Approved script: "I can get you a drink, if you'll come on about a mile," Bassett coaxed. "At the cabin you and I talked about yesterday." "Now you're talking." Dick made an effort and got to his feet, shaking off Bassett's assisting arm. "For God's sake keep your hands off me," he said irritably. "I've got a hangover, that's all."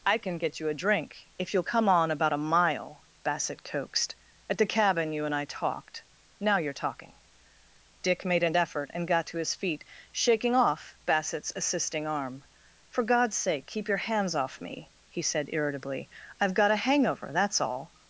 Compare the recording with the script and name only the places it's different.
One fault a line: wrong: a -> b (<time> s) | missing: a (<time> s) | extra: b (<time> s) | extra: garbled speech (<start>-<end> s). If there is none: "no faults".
missing: about yesterday (6.0 s)